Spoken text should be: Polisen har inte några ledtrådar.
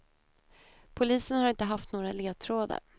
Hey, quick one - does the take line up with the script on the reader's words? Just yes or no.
no